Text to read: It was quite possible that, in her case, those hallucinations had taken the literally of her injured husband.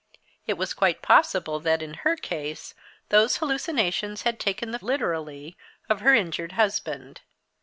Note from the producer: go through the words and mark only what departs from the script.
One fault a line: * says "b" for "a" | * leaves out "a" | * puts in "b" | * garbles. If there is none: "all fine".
all fine